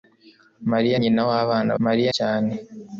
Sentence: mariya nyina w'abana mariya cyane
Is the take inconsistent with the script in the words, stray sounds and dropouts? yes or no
no